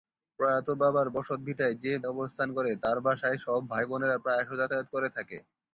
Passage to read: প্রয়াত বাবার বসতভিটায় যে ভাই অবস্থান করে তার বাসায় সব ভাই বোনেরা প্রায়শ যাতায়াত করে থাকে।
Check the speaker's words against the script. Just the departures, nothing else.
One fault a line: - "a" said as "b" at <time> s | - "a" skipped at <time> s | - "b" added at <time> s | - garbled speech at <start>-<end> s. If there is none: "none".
- "ভাই" skipped at 1.9 s